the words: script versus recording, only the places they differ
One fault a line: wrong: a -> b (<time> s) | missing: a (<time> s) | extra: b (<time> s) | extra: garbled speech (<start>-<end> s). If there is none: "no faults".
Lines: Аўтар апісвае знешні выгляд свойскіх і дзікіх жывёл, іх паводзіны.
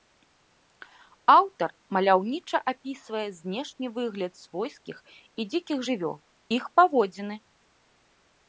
extra: маляўніча (2.0 s)